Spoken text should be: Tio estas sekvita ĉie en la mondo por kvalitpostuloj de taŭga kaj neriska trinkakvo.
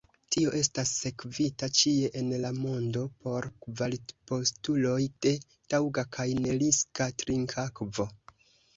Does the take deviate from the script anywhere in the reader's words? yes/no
no